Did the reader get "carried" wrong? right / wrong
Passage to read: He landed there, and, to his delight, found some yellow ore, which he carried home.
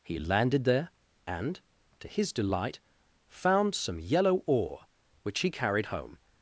right